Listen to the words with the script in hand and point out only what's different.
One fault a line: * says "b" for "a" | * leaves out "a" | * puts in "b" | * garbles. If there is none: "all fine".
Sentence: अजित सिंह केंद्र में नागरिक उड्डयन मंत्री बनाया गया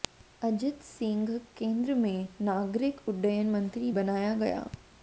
all fine